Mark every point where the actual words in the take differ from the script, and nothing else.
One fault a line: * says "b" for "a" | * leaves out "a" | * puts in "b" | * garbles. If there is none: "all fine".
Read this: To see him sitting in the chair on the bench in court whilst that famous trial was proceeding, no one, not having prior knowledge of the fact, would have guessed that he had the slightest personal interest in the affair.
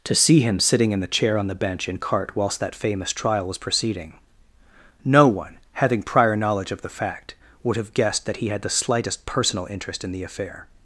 * says "cart" for "court"
* leaves out "not"